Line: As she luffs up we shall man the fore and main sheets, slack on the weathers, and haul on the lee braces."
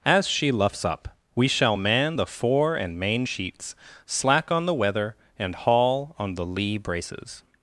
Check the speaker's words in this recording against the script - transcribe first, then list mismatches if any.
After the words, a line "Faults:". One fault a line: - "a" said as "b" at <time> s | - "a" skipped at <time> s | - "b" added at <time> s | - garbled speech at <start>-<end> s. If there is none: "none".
As she luffs up we shall man the fore and main sheets, slack on the weather, and haul on the lee braces."
Faults:
- "weathers" said as "weather" at 4.7 s